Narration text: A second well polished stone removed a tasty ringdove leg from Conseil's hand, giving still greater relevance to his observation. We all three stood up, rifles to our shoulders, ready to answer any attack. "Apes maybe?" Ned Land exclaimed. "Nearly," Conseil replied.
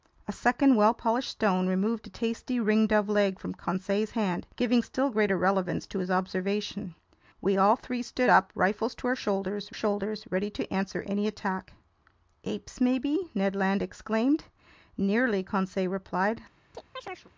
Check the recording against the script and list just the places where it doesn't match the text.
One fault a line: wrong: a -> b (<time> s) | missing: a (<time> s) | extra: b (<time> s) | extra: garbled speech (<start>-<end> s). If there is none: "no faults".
extra: shoulders (9.7 s)